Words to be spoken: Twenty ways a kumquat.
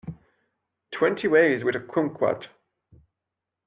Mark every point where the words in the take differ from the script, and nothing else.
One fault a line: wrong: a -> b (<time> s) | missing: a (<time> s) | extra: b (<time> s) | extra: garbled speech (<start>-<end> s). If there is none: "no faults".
extra: with (1.6 s)